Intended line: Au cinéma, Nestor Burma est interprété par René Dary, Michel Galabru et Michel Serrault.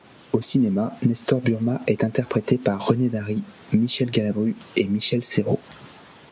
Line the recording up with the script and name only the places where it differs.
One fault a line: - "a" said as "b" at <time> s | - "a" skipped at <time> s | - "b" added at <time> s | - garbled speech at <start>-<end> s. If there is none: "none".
none